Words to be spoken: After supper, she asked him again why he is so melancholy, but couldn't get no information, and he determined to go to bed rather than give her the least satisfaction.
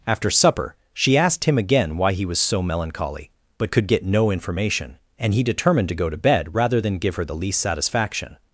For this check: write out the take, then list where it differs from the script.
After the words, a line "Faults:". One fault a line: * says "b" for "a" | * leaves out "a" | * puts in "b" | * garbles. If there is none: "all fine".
After supper, she asked him again why he was so melancholy, but could get no information, and he determined to go to bed rather than give her the least satisfaction.
Faults:
* says "was" for "is"
* says "could" for "couldn't"